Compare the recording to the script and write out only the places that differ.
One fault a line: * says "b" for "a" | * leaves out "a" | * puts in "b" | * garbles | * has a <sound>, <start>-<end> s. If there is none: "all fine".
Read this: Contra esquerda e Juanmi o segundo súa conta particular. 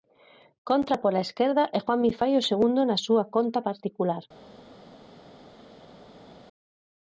* puts in "pola"
* puts in "fai"
* puts in "na"